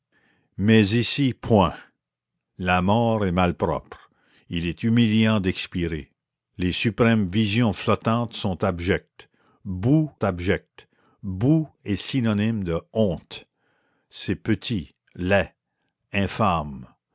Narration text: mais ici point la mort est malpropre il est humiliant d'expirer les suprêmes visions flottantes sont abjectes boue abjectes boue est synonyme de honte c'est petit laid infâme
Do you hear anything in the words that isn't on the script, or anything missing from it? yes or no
no